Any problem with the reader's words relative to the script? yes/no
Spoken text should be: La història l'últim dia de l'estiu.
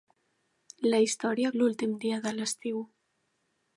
no